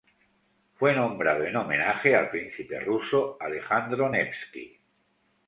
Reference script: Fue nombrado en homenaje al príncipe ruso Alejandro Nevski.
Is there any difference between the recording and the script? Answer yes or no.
no